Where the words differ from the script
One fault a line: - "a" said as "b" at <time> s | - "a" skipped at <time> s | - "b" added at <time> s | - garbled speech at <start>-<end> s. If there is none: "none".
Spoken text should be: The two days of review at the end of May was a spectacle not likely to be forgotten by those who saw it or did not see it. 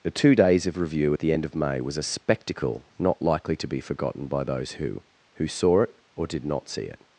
- "who" added at 5.3 s